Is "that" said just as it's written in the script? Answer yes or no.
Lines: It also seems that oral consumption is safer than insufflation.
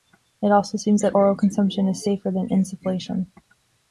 yes